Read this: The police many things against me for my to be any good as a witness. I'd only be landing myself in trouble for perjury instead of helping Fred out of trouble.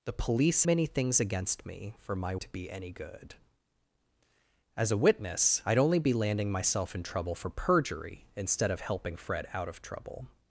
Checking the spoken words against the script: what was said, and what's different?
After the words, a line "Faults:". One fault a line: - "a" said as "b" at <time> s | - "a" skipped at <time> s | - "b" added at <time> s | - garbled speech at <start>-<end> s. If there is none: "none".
The police many things against me for my to be any good as a witness. I'd only be landing myself in trouble for perjury instead of helping Fred out of trouble.
Faults:
none